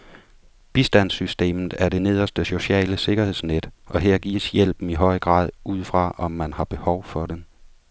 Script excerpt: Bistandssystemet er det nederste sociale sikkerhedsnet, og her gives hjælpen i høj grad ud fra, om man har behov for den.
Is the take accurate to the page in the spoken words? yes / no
yes